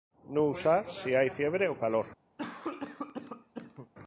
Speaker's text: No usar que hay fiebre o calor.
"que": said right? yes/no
no